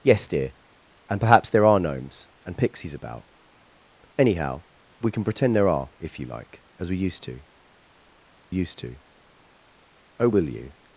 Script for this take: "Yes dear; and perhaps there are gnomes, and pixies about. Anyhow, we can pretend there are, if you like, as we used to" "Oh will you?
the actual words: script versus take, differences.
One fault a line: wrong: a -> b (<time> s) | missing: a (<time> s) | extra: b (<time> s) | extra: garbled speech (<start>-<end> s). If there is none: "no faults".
extra: used to (8.5 s)